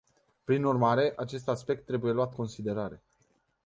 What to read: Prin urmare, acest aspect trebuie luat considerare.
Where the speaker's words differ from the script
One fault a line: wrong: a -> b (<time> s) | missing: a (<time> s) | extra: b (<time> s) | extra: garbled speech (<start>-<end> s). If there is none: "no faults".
no faults